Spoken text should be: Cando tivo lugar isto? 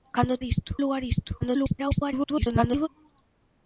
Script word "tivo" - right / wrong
wrong